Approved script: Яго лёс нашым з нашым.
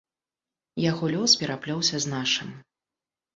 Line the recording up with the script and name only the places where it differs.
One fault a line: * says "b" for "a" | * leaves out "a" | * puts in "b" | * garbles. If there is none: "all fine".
* says "пераплёўся" for "нашым"